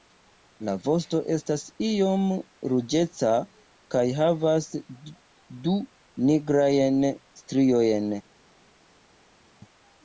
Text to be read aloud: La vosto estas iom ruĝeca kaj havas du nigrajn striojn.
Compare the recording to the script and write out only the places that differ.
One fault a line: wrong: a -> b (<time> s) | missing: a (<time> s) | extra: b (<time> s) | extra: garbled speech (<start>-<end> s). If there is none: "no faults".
no faults